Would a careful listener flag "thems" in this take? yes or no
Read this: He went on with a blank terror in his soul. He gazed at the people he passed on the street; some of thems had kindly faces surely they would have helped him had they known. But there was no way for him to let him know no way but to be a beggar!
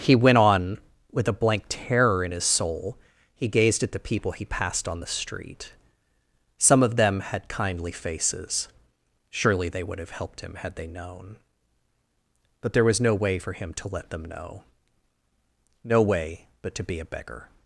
yes